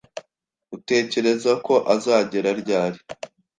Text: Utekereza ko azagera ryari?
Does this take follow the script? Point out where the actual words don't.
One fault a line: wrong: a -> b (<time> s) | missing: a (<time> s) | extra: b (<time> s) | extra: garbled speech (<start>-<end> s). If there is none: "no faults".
no faults